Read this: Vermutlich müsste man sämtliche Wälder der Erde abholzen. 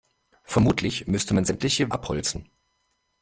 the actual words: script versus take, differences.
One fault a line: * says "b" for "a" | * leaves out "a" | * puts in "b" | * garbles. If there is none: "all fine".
* leaves out "Wälder der Erde"